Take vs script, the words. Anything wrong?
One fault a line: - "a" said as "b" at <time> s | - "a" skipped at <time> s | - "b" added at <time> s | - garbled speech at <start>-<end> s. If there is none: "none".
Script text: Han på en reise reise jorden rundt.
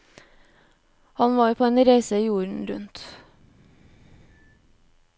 - "var" added at 1.4 s
- "reise" skipped at 2.2 s